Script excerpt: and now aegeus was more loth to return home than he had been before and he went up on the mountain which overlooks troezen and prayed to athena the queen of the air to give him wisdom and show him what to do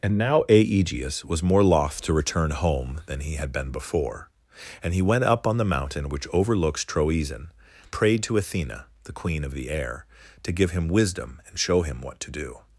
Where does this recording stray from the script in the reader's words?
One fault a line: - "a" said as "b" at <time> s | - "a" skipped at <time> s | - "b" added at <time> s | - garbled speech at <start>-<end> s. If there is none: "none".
- "and" skipped at 7.5 s